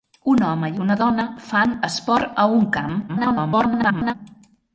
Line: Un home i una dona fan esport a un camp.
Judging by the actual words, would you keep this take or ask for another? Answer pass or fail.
fail